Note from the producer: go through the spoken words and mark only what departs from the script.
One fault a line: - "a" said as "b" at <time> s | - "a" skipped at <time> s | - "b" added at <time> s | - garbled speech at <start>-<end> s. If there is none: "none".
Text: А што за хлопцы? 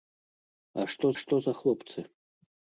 - "што" added at 1.2 s